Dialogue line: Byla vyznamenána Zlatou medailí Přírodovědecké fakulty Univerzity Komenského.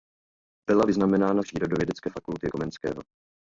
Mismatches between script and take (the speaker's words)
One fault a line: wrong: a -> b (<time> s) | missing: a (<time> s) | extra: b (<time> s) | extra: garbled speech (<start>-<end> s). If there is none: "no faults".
missing: Zlatou medailí (1.4 s)
missing: Univerzity (2.5 s)